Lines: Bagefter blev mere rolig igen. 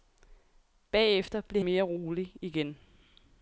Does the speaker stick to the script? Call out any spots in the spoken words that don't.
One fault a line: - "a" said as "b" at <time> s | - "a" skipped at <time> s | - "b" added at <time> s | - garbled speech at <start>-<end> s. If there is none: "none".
none